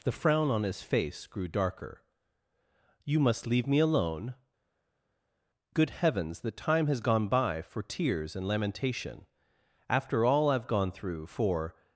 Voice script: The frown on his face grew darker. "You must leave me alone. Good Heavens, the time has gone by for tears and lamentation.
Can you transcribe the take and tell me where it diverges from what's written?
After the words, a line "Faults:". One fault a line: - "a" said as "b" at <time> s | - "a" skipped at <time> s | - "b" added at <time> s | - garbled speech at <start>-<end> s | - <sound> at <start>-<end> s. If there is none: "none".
The frown on his face grew darker. "You must leave me alone. Good Heavens, the time has gone by for tears and lamentation. After all I've gone through for
Faults:
- "After all I've gone through for" added at 9.9 s